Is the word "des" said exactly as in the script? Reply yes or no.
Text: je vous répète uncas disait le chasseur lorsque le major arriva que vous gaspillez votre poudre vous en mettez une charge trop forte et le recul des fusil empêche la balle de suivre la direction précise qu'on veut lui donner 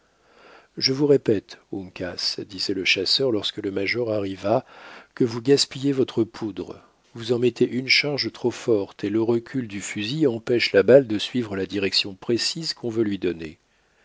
no